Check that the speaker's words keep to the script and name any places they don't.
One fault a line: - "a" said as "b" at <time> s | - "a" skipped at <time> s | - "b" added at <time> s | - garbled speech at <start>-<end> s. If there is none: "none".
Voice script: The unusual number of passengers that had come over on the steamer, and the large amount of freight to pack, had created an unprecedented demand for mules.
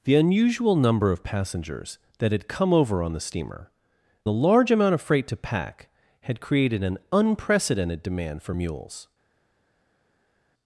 - "and" skipped at 3.7 s